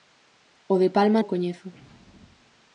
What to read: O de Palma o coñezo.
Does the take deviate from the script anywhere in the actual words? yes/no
no